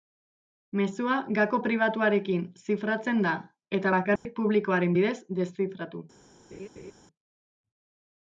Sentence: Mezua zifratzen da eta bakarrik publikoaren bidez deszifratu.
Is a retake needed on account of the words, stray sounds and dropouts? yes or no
yes